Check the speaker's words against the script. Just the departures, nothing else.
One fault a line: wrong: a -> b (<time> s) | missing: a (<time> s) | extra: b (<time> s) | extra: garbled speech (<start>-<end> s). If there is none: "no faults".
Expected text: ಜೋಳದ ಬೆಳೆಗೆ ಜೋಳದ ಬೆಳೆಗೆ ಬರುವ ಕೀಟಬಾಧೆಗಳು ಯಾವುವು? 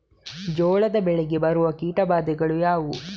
missing: ಜೋಳದ ಬೆಳೆಗೆ (1.4 s)